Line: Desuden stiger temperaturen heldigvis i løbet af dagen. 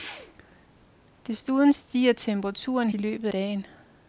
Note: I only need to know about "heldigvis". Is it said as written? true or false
false